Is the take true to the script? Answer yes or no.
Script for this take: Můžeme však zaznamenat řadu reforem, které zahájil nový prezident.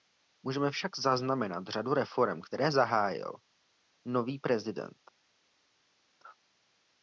yes